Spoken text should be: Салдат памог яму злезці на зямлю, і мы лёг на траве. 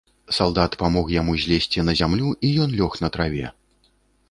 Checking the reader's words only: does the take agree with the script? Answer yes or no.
no